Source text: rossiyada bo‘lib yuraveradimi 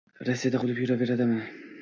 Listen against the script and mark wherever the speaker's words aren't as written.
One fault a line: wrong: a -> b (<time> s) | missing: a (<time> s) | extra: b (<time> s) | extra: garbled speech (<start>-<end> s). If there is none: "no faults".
no faults